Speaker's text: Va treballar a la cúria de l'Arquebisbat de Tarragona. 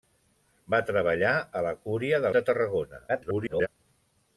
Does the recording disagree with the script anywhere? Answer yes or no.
yes